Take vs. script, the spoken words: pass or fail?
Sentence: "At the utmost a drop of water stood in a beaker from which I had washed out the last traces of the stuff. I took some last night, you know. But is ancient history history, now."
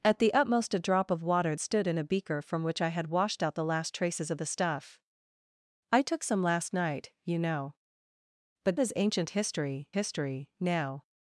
pass